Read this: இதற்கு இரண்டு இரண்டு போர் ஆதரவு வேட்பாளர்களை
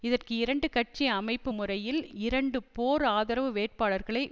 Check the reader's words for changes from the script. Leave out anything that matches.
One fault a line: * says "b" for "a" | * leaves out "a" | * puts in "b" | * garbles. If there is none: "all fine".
* puts in "கட்சி அமைப்பு முறையில்"